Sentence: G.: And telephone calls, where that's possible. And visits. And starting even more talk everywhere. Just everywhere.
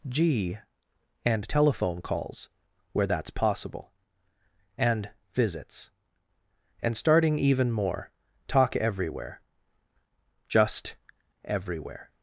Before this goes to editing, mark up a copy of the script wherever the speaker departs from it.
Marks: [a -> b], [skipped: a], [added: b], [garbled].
G.: And telephone calls, where that's possible. And visits. And starting even more talk everywhere. Just everywhere.